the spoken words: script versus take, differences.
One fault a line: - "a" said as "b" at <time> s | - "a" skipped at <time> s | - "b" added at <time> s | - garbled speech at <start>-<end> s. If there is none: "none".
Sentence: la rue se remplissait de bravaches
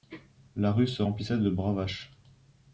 none